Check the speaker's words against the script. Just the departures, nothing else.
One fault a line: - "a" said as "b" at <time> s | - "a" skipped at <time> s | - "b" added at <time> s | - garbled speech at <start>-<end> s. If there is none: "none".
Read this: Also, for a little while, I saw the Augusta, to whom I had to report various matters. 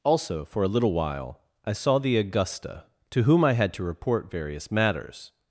none